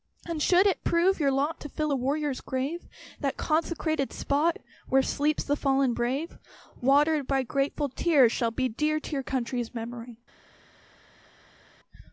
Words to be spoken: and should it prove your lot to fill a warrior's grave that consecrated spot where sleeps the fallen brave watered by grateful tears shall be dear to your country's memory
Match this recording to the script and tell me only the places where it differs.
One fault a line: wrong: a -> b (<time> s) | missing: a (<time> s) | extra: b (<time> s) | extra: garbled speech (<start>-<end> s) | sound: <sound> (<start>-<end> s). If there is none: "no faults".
no faults